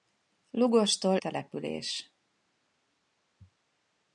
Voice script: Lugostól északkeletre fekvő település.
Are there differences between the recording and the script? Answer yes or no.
yes